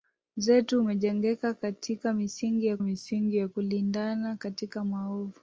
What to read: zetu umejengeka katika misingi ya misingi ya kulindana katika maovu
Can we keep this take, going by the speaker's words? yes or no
yes